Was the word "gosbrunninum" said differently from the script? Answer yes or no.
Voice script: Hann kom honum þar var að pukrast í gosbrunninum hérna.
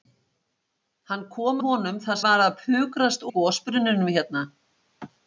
no